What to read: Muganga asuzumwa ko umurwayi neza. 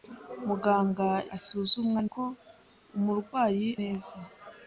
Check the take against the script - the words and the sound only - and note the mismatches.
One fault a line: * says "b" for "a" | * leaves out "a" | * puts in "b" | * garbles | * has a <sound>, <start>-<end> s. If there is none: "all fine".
all fine